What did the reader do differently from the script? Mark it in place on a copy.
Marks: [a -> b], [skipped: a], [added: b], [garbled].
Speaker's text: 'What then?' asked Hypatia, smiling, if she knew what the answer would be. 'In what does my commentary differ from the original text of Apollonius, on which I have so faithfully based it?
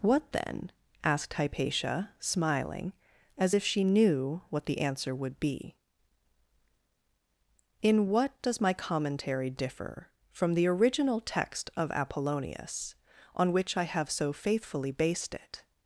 'What then?' asked Hypatia, smiling, [added: as] if she knew what the answer would be. 'In what does my commentary differ from the original text of Apollonius, on which I have so faithfully based it?